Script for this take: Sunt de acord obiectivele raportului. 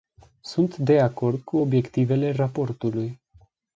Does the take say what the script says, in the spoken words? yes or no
no